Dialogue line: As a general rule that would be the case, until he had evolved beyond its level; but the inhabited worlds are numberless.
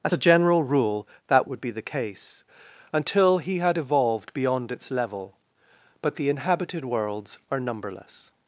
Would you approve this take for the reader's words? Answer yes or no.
yes